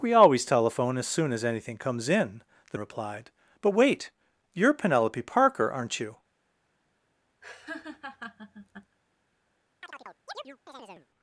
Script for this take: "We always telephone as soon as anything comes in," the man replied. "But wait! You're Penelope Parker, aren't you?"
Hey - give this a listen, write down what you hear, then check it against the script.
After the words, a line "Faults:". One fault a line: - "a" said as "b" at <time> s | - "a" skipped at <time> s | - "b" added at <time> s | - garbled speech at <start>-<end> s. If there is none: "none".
"We always telephone as soon as anything comes in," the replied. "But wait! You're Penelope Parker, aren't you?"
Faults:
- "man" skipped at 2.8 s